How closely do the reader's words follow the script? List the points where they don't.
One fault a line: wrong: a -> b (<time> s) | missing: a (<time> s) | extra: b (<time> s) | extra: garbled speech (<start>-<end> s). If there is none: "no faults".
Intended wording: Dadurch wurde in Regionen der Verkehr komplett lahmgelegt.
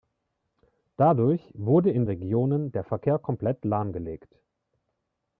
no faults